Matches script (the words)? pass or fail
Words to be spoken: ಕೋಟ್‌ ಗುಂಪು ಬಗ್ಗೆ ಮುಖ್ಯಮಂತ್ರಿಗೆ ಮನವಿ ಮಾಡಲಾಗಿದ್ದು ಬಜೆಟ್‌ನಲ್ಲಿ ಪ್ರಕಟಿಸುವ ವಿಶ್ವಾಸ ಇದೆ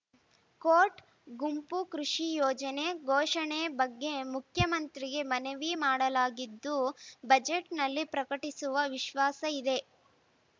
fail